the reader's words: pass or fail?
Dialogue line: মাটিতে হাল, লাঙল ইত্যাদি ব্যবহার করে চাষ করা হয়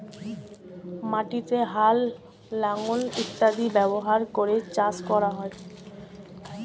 pass